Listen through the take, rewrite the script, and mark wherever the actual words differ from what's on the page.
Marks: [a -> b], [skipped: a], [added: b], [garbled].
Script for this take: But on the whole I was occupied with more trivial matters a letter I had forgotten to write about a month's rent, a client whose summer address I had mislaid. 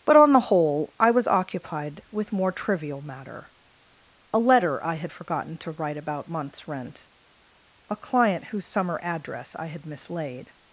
But on the whole I was occupied with more trivial [matters -> matter] a letter I had forgotten to write about [skipped: a] month's rent, a client whose summer address I had mislaid.